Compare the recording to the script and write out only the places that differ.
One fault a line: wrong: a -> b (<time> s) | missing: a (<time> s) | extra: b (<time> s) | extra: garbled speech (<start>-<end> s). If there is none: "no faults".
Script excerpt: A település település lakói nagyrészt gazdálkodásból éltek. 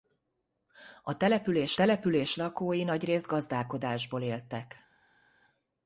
no faults